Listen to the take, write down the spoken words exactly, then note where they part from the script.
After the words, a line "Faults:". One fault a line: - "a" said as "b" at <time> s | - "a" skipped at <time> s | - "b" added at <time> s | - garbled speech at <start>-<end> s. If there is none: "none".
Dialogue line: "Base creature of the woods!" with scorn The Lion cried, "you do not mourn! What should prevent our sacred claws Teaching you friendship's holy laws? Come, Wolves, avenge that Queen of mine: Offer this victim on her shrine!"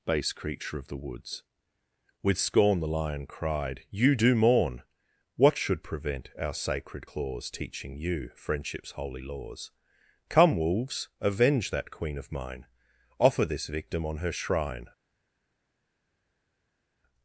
"Base creature of the woods!" with scorn The Lion cried, "you do mourn! What should prevent our sacred claws Teaching you friendship's holy laws? Come, Wolves, avenge that Queen of mine: Offer this victim on her shrine!"
Faults:
- "not" skipped at 4.3 s